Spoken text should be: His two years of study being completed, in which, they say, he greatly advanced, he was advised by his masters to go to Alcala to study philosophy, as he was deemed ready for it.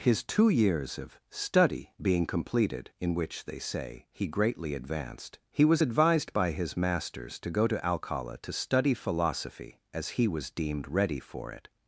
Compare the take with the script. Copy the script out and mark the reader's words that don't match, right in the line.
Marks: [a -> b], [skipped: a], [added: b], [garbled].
His two years of study being completed, in which, they say, he greatly advanced, he was advised by his masters to go to Alcala to study philosophy, as he was deemed ready for it.